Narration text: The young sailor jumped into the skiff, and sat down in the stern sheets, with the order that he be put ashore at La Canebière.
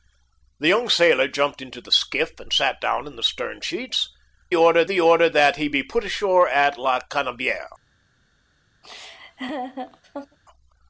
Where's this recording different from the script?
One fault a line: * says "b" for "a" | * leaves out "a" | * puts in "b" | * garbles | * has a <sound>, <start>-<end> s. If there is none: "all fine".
* says "order" for "with"
* has a laugh, 8.8-10.4 s